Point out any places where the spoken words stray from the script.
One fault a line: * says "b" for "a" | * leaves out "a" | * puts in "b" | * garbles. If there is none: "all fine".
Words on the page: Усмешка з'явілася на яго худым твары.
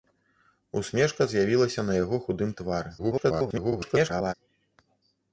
* garbles